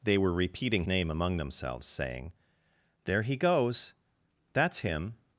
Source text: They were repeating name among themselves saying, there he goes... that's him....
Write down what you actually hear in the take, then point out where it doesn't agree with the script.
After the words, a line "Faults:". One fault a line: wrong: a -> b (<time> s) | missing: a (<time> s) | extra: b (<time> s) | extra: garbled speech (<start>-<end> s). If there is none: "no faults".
They were repeating name among themselves saying, there he goes... that's him....
Faults:
no faults